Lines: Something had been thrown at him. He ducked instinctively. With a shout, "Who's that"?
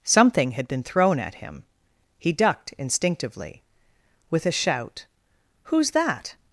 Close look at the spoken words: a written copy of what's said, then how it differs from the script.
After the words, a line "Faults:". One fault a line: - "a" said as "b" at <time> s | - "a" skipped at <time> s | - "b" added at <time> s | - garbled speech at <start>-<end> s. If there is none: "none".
Something had been thrown at him. He ducked instinctively. With a shout, "Who's that"?
Faults:
none